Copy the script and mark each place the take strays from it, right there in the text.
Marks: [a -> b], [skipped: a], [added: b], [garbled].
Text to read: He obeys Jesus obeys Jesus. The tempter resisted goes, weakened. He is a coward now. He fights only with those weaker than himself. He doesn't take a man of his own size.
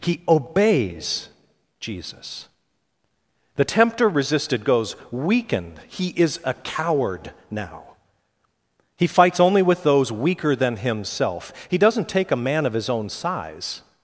He obeys Jesus [skipped: obeys Jesus.] The tempter resisted goes, weakened. He is a coward now. He fights only with those weaker than himself. He doesn't take a man of his own size.